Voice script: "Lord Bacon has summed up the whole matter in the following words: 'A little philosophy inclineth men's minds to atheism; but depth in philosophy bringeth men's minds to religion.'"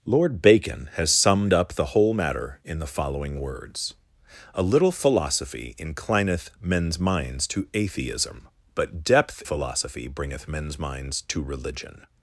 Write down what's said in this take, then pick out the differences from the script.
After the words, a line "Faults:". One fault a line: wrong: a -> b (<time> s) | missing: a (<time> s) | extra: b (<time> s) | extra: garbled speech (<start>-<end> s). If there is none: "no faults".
"Lord Bacon has summed up the whole matter in the following words: 'A little philosophy inclineth men's minds to atheism; but depth philosophy bringeth men's minds to religion.'"
Faults:
missing: in (9.4 s)